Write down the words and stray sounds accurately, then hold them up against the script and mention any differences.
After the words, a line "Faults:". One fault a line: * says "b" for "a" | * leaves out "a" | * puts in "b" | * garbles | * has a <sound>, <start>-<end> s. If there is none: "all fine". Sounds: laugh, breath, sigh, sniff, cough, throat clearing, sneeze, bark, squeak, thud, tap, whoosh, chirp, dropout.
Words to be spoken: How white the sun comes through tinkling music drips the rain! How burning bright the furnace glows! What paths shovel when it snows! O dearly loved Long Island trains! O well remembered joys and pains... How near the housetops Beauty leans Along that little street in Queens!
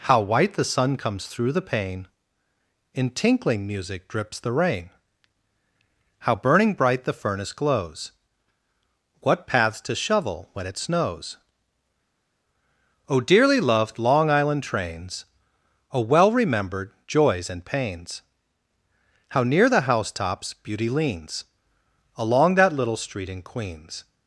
How white the sun comes through the pane! In tinkling music drips the rain! How burning bright the furnace glows! What paths to shovel when it snows! O dearly loved Long Island trains! O well remembered joys and pains... How near the housetops Beauty leans Along that little street in Queens!
Faults:
* puts in "the pane In"
* puts in "to"